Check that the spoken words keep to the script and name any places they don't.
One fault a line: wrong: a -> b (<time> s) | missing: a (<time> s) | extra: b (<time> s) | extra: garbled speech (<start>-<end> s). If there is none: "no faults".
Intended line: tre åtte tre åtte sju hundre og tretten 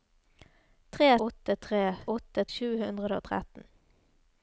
no faults